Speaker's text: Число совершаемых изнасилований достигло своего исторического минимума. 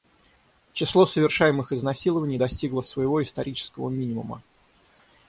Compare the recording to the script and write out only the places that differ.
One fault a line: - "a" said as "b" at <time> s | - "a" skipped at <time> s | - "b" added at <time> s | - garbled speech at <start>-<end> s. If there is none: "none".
none